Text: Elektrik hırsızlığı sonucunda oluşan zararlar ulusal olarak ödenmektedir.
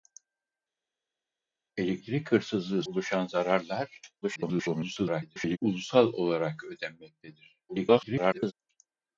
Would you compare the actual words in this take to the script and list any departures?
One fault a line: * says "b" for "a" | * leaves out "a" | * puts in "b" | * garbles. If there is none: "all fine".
* leaves out "sonucunda"
* garbles
* garbles